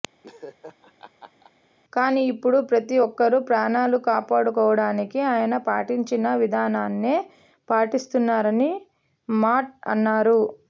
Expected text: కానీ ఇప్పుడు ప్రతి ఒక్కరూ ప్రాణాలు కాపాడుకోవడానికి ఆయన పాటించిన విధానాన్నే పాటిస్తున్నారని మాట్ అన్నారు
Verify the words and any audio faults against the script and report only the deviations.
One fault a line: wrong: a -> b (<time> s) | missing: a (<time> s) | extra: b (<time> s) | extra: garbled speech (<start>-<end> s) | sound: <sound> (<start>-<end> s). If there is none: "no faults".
sound: laugh (0.2-1.5 s)